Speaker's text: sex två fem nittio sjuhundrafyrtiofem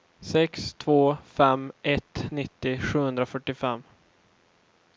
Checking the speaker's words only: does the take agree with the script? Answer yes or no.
no